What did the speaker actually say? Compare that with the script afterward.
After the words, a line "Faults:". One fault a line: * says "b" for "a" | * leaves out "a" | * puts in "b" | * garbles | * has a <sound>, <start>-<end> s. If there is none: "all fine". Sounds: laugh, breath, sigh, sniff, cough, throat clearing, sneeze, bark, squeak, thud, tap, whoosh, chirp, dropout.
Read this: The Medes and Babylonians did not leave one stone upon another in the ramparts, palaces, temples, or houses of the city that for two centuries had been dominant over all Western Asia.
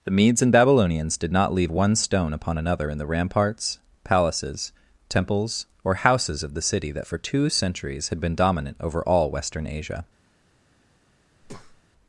The Medes and Babylonians did not leave one stone upon another in the ramparts, palaces, temples, or houses of the city that for two centuries had been dominant over all Western Asia.
Faults:
* has a breath, 11.4-11.8 s